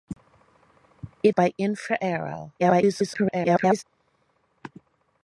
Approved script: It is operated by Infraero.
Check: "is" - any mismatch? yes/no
yes